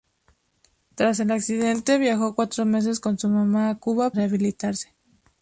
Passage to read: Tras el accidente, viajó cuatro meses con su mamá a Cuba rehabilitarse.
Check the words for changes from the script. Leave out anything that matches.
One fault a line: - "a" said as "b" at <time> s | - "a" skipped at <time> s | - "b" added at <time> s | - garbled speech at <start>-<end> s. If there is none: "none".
none